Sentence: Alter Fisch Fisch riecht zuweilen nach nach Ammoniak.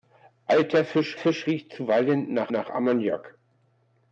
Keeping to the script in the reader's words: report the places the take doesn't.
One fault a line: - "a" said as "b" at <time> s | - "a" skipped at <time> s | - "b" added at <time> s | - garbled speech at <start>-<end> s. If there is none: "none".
none